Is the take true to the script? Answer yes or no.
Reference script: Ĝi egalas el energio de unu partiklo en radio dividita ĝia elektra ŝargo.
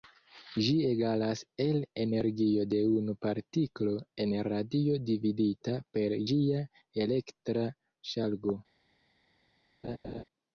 no